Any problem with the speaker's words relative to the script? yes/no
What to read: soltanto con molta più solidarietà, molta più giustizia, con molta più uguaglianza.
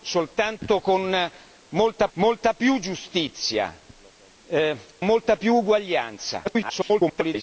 yes